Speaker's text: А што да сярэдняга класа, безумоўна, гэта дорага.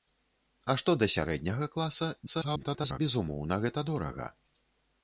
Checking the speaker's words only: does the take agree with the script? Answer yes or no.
no